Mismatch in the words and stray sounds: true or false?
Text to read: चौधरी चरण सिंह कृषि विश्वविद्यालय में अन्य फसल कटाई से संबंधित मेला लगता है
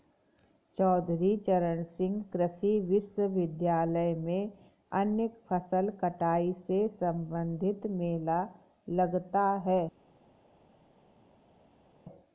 false